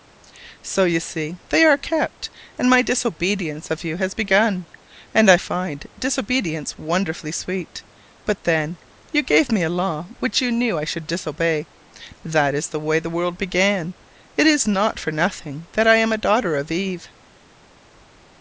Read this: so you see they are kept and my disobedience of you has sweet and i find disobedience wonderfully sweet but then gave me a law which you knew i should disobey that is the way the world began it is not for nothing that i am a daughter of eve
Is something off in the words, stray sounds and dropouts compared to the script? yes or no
yes